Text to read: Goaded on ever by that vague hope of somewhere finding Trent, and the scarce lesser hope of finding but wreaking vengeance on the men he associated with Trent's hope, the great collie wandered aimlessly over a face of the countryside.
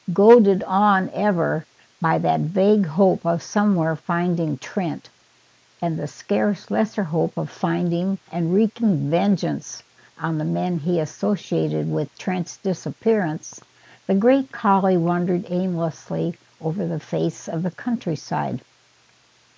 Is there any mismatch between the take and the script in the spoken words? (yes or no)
yes